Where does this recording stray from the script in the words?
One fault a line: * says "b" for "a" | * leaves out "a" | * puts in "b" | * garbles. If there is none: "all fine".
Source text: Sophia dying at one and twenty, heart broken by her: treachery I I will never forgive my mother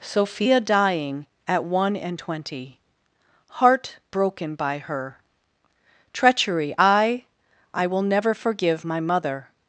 all fine